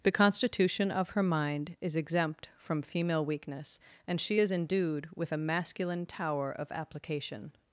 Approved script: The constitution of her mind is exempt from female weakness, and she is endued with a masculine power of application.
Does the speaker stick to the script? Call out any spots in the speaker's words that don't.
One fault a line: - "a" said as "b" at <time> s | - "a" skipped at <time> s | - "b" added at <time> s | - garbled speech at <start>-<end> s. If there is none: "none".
- "power" said as "tower" at 6.0 s